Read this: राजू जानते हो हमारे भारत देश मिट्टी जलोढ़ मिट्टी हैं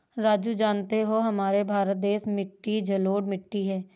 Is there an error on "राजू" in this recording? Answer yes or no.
no